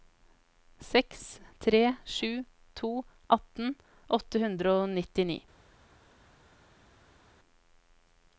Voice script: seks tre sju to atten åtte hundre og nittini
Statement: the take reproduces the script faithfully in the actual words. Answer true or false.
true